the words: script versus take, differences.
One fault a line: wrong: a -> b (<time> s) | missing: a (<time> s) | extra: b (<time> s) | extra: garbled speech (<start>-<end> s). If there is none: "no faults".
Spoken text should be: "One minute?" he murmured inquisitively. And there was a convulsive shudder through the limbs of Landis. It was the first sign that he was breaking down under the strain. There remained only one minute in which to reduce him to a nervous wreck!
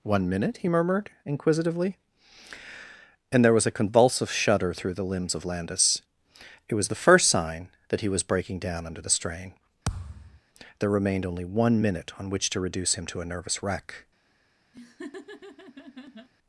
wrong: in -> on (12.2 s)